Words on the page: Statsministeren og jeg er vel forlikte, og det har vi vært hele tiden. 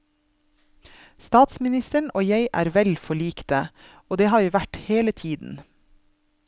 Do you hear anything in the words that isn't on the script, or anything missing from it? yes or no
no